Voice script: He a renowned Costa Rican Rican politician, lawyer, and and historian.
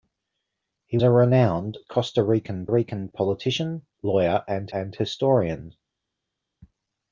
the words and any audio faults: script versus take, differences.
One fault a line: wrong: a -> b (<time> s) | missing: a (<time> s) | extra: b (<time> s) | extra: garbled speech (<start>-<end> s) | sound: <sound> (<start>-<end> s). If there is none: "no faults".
no faults